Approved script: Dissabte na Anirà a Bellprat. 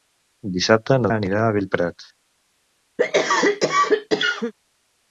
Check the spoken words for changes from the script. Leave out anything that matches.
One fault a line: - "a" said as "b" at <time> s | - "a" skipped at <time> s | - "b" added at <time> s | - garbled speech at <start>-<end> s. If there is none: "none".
none